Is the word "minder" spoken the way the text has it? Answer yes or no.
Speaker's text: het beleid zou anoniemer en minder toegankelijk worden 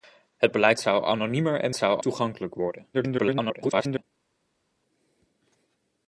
no